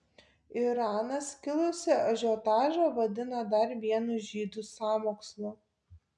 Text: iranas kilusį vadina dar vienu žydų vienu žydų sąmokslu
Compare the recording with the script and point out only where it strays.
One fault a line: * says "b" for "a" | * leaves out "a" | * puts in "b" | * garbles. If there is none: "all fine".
* puts in "ažiotažą"
* leaves out "vienu žydų"